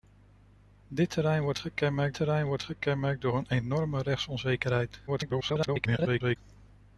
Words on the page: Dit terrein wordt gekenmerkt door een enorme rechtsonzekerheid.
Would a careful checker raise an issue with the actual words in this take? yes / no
yes